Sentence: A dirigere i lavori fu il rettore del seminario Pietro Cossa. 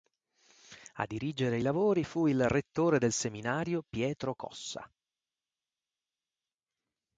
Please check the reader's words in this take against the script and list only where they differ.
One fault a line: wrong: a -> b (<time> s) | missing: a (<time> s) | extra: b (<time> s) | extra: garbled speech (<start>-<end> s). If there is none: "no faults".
no faults